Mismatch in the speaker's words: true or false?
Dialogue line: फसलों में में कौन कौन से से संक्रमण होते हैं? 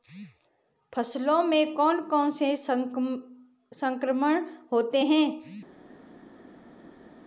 true